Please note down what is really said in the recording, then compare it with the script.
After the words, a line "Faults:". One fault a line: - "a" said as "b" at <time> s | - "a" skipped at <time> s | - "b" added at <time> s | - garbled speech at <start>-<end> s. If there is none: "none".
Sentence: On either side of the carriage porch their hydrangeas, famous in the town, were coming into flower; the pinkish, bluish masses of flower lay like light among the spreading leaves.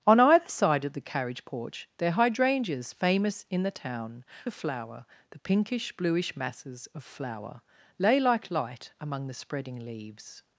On either side of the carriage porch their hydrangeas, famous in the town, flower; the pinkish, bluish masses of flower lay like light among the spreading leaves.
Faults:
- "were coming into" skipped at 4.2 s